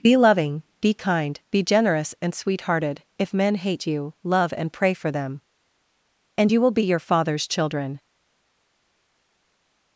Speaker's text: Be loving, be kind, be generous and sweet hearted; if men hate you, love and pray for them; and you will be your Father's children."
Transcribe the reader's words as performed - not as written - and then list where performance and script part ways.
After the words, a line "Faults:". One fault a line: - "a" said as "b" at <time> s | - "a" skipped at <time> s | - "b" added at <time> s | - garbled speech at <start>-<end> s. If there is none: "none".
Be loving, be kind, be generous and sweet hearted; if men hate you, love and pray for them; and you will be your Father's children."
Faults:
none